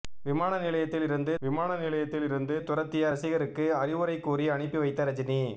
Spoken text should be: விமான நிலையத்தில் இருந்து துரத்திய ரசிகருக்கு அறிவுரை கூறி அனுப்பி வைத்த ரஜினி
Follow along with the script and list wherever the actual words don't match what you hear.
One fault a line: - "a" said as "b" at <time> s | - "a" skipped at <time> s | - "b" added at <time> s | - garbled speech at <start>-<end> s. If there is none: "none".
- "விமான நிலையத்தில் இருந்து" added at 1.4 s